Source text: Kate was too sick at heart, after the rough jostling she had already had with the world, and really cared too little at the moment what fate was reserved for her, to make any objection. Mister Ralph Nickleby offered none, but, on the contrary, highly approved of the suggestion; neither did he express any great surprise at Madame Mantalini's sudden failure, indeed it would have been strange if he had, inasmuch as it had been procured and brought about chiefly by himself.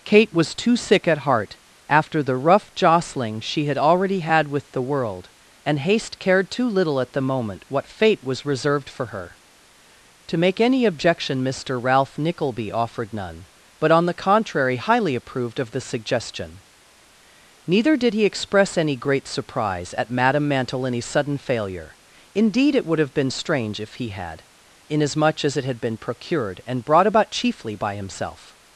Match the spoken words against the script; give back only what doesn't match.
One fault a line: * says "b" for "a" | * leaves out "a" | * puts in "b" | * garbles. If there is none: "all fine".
* says "haste" for "really"